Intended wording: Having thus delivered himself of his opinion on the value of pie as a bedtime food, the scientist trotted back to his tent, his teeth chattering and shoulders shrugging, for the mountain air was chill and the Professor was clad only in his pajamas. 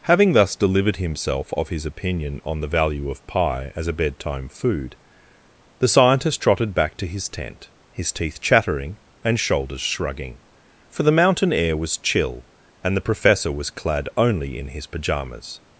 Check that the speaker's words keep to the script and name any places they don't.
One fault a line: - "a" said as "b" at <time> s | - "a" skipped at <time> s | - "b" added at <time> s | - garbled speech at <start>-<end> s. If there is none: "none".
none